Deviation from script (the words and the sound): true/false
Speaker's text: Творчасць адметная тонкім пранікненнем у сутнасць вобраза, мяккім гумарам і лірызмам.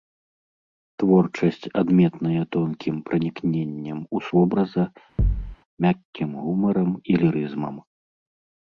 true